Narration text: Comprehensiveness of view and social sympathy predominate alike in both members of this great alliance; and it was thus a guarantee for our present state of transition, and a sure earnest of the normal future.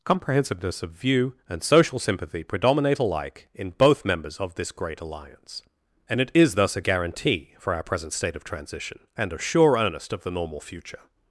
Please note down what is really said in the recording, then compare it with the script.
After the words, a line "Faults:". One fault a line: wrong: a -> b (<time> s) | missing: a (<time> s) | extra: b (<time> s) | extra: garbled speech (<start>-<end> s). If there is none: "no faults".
Comprehensiveness of view and social sympathy predominate alike in both members of this great alliance; and it is thus a guarantee for our present state of transition, and a sure earnest of the normal future.
Faults:
wrong: was -> is (6.3 s)